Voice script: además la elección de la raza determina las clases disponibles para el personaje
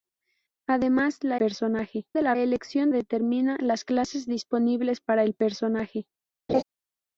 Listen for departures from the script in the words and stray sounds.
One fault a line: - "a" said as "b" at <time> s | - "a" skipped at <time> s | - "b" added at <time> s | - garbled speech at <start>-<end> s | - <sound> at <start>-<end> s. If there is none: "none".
- "elección" said as "personaje" at 1.3 s
- "raza" said as "elección" at 2.4 s
- laugh at 6.5-6.6 s